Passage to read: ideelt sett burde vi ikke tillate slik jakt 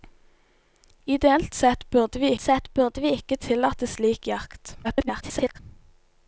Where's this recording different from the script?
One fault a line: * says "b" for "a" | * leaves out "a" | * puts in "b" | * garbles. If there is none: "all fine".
* puts in "sett burde vi"
* garbles